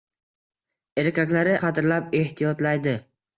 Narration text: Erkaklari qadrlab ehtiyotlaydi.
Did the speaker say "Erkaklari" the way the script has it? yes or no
yes